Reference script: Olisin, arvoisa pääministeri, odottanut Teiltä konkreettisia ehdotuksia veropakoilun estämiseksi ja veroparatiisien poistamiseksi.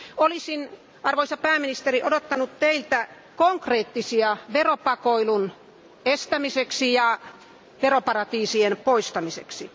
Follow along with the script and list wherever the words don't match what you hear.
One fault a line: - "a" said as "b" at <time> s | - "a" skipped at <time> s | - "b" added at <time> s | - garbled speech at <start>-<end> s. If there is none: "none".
- "ehdotuksia" skipped at 4.4 s